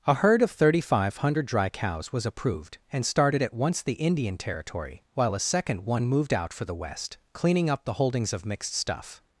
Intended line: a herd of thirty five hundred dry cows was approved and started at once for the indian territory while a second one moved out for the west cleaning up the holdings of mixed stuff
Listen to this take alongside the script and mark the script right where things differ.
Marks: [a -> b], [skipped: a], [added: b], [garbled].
a herd of thirty five hundred dry cows was approved and started at once [skipped: for] the indian territory while a second one moved out for the west cleaning up the holdings of mixed stuff